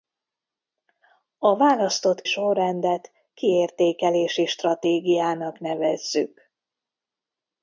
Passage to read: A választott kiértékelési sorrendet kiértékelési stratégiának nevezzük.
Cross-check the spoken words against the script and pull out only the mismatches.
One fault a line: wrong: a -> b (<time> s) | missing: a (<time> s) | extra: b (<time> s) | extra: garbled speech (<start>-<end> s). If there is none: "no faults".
missing: kiértékelési (2.2 s)